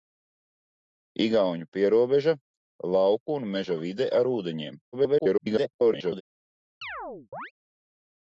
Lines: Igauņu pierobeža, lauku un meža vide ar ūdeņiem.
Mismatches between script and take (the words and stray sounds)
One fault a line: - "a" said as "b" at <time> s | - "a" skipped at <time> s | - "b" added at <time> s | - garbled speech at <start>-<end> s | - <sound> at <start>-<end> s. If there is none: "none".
- garbled speech at 4.9-6.2 s
- chirp at 6.8-7.5 s